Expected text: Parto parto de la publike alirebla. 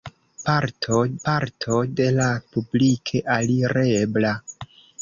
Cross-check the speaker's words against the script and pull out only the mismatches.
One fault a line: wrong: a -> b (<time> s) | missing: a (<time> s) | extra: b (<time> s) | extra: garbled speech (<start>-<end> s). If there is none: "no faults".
no faults